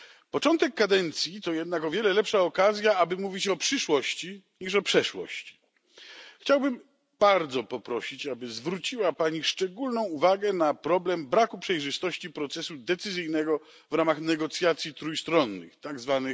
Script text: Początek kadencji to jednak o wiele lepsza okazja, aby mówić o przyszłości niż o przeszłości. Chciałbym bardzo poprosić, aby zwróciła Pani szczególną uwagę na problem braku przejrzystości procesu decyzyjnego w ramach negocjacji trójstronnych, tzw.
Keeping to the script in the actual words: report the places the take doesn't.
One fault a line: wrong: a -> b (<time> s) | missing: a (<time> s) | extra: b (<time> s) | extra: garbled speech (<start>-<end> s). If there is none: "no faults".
no faults